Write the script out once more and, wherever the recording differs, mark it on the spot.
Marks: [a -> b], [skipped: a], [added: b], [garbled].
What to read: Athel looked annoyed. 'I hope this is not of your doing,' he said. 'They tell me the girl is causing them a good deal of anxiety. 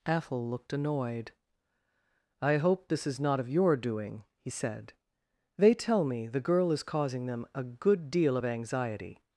Athel looked annoyed. 'I hope this is not of your doing,' he said. 'They tell me the girl is causing them a good deal of anxiety.